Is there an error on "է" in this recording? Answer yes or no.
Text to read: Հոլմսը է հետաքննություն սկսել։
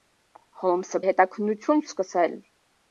no